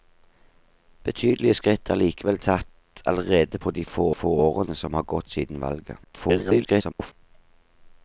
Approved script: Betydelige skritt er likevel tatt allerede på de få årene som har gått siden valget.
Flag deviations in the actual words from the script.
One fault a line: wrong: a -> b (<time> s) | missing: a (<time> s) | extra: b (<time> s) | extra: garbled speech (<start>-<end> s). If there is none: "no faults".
extra: få (4.1 s)
extra: garbled speech (6.0-7.1 s)